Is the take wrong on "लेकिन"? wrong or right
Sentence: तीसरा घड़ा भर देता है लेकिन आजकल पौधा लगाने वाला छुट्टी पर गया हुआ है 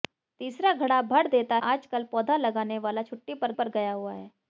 wrong